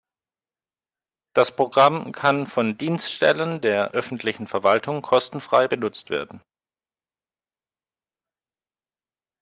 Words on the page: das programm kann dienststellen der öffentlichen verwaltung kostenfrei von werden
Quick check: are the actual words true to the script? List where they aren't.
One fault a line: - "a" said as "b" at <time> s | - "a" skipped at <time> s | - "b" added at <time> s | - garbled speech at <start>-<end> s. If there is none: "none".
- "von" added at 2.5 s
- "von" said as "benutzt" at 5.6 s